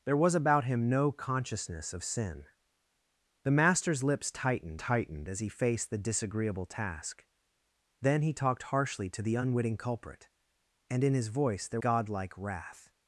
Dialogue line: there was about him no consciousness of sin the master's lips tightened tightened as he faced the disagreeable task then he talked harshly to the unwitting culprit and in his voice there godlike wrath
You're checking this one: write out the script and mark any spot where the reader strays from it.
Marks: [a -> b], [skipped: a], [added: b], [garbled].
there was about him no consciousness of sin the master's lips tightened tightened as he faced the disagreeable task then he talked harshly to the unwitting culprit and in his voice there godlike wrath